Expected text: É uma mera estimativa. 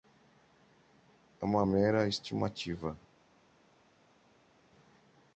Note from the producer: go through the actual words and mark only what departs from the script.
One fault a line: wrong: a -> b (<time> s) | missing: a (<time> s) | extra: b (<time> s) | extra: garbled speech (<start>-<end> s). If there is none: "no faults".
no faults